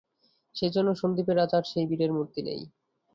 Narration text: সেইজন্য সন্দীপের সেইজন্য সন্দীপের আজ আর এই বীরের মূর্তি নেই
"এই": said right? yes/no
no